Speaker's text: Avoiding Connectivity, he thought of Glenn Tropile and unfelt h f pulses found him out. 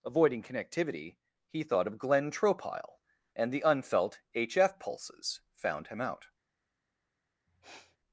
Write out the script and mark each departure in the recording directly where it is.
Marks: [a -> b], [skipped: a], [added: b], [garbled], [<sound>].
Avoiding Connectivity, he thought of Glenn Tropile and [added: the] unfelt h f pulses found him out. [sniff]